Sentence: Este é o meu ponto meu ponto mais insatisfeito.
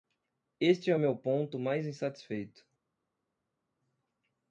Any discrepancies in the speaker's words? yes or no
yes